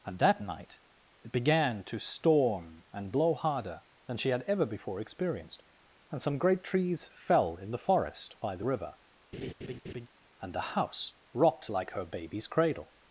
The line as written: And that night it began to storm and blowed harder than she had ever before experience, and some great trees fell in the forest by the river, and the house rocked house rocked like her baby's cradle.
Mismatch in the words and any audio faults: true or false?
true